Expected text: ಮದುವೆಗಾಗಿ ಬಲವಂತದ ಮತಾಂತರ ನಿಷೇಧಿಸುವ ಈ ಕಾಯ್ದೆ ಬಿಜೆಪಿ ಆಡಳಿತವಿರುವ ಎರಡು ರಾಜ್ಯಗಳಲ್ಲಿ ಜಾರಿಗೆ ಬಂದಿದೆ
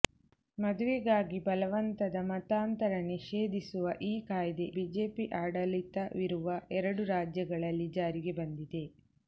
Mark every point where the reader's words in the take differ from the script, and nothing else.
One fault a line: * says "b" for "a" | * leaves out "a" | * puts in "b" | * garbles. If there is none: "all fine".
all fine